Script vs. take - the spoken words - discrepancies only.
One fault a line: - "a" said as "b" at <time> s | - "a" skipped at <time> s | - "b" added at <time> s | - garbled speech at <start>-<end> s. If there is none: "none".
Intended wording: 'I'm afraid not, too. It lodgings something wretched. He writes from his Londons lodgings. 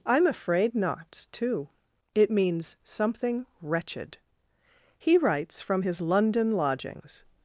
- "lodgings" said as "means" at 2.3 s
- "Londons" said as "London" at 6.0 s